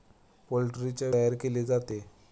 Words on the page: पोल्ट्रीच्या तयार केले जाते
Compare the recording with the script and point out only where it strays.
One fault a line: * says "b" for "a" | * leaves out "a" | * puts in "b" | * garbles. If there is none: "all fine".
all fine